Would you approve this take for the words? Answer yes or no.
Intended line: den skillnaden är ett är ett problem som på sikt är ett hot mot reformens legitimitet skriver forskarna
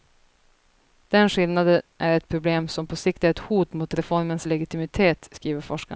no